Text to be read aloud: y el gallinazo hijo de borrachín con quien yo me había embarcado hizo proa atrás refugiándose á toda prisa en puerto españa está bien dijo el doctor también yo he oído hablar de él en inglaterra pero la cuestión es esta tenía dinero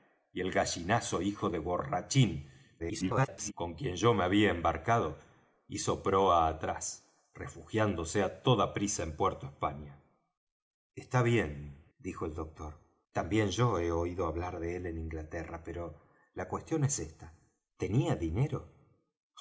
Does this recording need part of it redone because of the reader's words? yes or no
yes